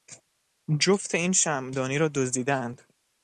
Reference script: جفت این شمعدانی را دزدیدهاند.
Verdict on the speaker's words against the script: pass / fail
pass